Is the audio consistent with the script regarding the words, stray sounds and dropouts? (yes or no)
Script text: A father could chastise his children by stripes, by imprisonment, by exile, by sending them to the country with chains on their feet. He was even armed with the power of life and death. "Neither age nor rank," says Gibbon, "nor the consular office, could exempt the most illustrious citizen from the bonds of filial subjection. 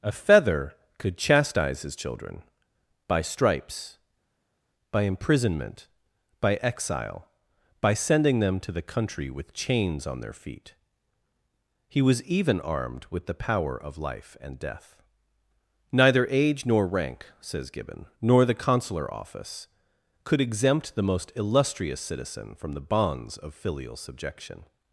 no